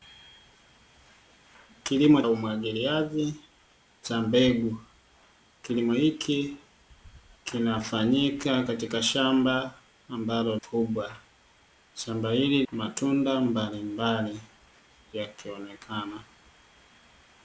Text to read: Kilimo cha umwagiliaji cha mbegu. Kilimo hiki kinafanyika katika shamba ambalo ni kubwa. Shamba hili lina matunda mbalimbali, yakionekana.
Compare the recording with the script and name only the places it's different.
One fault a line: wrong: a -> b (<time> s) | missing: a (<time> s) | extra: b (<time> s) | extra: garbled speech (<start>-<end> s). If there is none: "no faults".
missing: cha (2.2 s)
missing: ni (10.5 s)
missing: lina (12.6 s)